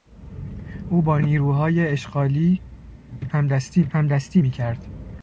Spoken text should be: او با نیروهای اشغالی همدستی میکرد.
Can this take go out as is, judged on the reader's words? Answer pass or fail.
fail